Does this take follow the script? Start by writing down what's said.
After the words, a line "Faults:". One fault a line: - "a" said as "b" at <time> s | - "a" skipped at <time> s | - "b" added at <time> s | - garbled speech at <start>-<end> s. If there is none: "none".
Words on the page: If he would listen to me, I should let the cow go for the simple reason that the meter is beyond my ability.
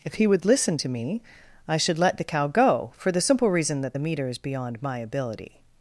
If he would listen to me, I should let the cow go for the simple reason that the meter is beyond my ability.
Faults:
none